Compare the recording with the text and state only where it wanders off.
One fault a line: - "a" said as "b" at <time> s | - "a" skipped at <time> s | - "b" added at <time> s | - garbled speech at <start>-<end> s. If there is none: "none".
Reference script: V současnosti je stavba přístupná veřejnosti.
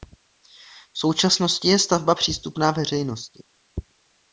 none